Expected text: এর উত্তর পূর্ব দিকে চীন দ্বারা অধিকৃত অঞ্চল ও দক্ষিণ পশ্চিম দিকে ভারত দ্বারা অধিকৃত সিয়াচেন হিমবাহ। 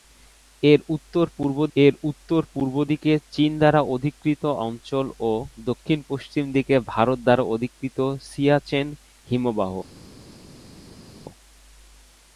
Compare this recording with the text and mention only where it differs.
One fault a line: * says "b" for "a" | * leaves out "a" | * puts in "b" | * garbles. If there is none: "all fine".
* puts in "এর উত্তর পূর্ব"